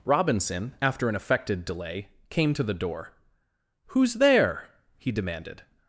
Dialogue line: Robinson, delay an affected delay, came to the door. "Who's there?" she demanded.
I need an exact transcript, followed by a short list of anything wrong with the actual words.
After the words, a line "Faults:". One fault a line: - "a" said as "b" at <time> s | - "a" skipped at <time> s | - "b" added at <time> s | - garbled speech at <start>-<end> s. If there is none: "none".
Robinson, after an affected delay, came to the door. "Who's there?" he demanded.
Faults:
- "delay" said as "after" at 0.8 s
- "she" said as "he" at 5.0 s